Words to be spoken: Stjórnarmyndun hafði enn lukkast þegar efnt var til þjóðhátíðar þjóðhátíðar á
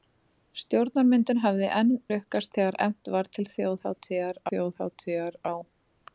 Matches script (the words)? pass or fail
pass